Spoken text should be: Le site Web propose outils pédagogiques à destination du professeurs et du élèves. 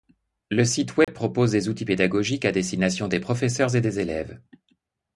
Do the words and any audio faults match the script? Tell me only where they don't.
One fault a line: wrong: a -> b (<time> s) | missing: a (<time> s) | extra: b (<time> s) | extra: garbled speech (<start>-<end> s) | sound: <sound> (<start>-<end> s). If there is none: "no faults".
sound: dropout (1.0-1.1 s)
extra: des (1.5 s)
wrong: du -> des (3.1 s)
wrong: du -> des (3.8 s)